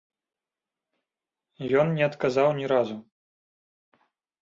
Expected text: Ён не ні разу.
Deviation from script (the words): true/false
true